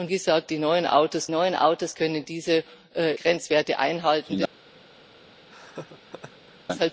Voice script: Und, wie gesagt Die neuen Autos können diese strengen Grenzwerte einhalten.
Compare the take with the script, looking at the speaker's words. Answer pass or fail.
fail